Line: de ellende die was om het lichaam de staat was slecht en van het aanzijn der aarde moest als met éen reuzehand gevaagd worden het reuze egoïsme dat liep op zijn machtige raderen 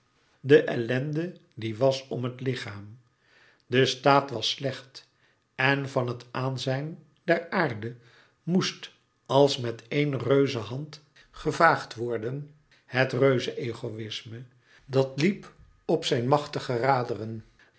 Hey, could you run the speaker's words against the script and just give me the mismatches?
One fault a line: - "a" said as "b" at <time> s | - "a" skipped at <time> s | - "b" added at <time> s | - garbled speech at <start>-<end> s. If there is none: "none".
none